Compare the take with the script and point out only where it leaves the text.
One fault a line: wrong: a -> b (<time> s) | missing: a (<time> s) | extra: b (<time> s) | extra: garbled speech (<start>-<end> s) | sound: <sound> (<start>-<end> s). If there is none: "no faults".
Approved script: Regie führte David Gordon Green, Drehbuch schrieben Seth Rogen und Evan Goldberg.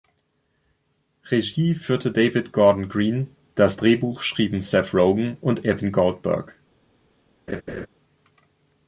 extra: das (3.6 s)
sound: laugh (7.5-7.9 s)